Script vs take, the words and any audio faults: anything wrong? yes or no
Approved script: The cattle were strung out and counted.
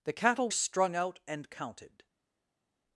yes